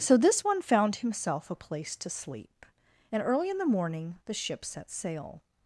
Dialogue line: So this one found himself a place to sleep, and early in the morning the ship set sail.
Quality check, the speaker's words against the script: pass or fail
pass